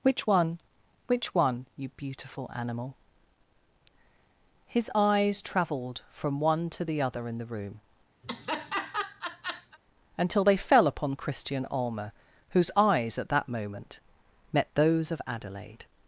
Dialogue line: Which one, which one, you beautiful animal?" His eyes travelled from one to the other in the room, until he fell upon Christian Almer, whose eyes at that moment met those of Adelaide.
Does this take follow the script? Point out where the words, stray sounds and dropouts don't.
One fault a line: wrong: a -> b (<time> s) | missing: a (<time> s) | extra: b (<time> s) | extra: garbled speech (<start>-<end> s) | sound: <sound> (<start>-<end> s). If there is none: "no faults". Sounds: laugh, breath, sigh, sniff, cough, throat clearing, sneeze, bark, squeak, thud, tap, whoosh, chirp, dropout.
sound: laugh (8.2-9.8 s)
wrong: he -> they (10.4 s)